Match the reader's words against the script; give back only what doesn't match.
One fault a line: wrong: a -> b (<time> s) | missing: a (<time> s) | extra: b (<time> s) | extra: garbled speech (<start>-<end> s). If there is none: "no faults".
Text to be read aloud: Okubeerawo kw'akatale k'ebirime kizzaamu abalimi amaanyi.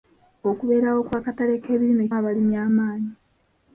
missing: kizzaamu (2.0 s)